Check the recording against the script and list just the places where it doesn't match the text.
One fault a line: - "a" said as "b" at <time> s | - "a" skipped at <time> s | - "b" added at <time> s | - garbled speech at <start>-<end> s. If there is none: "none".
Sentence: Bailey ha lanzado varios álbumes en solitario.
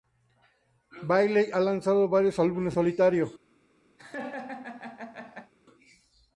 - "en" skipped at 2.8 s